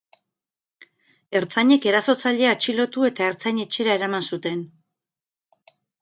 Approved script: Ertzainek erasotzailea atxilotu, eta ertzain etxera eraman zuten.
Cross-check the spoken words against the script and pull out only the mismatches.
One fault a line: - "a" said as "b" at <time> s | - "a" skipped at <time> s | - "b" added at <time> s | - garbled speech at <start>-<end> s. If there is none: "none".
none